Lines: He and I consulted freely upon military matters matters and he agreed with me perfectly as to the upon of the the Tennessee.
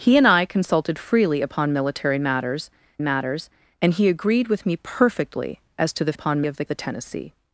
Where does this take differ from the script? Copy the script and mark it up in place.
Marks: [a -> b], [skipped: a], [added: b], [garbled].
He and I consulted freely upon military matters matters and he agreed with me perfectly as to the upon of the the Tennessee.